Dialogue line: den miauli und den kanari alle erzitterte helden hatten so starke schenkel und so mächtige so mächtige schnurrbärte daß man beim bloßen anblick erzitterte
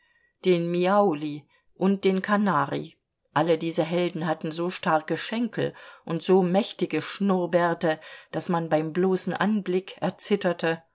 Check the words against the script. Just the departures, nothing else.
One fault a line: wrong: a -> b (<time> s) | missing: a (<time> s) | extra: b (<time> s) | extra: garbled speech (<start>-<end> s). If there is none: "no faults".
wrong: erzitterte -> diese (3.6 s)
missing: so mächtige (7.0 s)